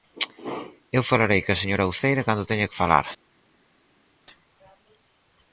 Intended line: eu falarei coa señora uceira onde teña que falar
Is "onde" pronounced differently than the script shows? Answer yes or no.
yes